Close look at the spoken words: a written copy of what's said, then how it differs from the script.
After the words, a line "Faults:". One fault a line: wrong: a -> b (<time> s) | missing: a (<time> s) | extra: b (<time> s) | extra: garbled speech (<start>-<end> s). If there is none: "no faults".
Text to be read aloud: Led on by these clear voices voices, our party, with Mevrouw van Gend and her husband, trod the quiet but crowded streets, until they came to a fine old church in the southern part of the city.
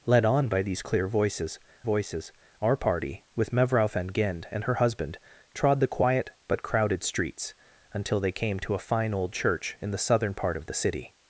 Led on by these clear voices voices, our party, with Mevrouw van Gend and her husband, trod the quiet but crowded streets, until they came to a fine old church in the southern part of the city.
Faults:
no faults